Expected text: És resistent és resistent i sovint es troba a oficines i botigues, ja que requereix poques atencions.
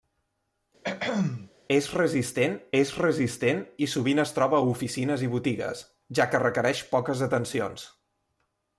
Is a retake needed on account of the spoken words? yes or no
no